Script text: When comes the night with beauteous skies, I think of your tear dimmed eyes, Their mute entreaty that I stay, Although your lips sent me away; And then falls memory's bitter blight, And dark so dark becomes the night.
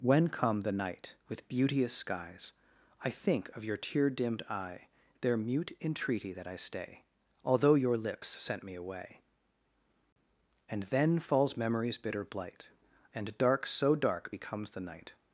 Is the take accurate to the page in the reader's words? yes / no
no